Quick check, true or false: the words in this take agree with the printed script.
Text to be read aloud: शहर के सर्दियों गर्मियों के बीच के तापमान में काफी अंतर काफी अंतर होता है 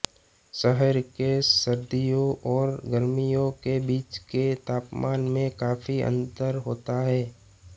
false